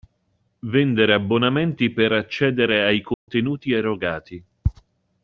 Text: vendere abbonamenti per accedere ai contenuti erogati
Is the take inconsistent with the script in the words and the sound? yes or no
yes